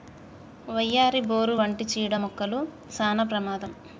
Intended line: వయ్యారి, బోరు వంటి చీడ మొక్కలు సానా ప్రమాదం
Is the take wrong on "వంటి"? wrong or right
right